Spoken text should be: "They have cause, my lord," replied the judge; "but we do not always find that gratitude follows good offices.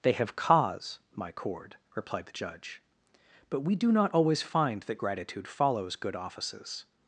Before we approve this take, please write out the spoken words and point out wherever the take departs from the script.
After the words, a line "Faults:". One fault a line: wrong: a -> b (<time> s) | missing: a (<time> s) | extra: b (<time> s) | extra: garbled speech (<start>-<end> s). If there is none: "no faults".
"They have cause, my cord," replied the judge; "but we do not always find that gratitude follows good offices.
Faults:
wrong: lord -> cord (1.3 s)